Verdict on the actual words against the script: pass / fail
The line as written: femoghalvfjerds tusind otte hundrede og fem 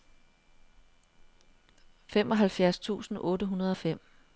pass